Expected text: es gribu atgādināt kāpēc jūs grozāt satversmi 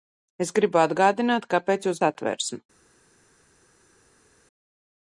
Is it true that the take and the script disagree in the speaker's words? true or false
true